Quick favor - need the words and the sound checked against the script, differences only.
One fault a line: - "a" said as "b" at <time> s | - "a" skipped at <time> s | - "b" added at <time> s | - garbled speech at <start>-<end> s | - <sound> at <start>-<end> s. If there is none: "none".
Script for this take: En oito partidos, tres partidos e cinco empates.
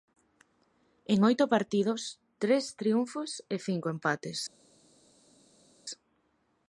- "partidos" said as "triunfos" at 2.8 s